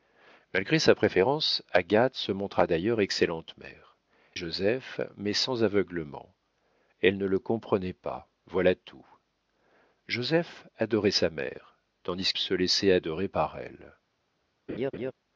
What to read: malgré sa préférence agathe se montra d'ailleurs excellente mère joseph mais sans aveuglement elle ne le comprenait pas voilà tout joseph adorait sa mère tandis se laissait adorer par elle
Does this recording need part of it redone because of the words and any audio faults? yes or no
yes